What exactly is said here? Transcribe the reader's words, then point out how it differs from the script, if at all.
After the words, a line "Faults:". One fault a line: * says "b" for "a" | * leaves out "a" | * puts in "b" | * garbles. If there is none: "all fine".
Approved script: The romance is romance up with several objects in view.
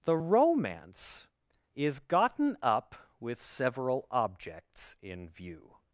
The romance is gotten up with several objects in view.
Faults:
* says "gotten" for "romance"